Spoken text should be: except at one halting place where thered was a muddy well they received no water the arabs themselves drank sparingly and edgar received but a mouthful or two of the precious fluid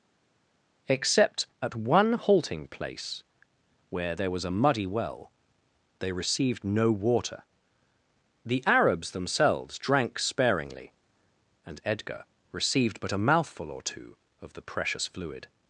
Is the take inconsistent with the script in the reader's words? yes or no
yes